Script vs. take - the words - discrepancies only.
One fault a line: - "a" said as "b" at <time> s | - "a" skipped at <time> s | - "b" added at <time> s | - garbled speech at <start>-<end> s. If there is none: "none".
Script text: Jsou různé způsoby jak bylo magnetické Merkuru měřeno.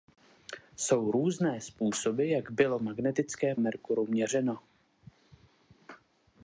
none